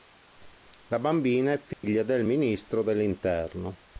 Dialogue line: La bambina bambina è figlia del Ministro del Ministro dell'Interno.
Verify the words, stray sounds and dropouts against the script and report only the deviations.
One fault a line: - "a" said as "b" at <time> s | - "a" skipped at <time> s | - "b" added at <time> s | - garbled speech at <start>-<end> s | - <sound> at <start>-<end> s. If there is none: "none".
- "bambina" skipped at 1.5 s
- dropout at 1.7-1.8 s
- "del Ministro" skipped at 2.8 s